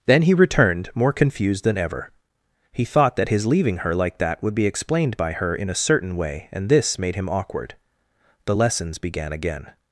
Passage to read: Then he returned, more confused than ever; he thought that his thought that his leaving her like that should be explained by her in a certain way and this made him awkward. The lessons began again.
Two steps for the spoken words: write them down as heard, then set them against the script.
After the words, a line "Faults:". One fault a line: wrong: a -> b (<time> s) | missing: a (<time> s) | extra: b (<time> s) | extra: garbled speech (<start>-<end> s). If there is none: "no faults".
Then he returned, more confused than ever; he thought that his leaving her like that would be explained by her in a certain way and this made him awkward. The lessons began again.
Faults:
missing: thought that his (3.5 s)
wrong: should -> would (4.4 s)